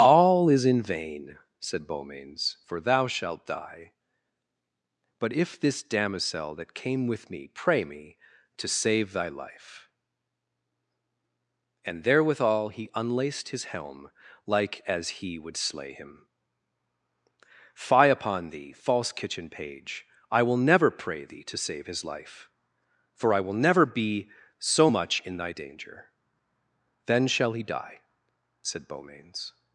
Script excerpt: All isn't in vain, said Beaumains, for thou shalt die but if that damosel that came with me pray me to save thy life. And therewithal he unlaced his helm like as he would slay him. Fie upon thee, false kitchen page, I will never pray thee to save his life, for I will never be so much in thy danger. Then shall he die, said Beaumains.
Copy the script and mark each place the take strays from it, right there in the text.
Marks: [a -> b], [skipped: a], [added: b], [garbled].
All [isn't -> is] in vain, said Beaumains, for thou shalt die but if [that -> this] damosel that came with me pray me to save thy life. And therewithal he unlaced his helm like as he would slay him. Fie upon thee, false kitchen page, I will never pray thee to save his life, for I will never be so much in thy danger. Then shall he die, said Beaumains.